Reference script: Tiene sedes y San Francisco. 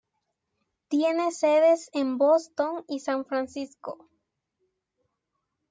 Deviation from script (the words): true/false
true